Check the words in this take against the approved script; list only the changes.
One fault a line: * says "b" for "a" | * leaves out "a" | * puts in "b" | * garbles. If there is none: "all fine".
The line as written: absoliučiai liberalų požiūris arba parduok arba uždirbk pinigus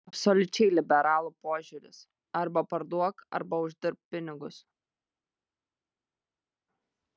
all fine